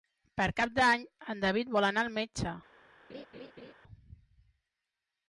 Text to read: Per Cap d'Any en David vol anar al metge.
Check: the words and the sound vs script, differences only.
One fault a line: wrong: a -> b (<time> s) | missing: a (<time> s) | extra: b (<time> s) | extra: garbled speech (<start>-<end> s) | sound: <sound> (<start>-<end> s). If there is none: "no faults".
sound: laugh (3.1-3.7 s)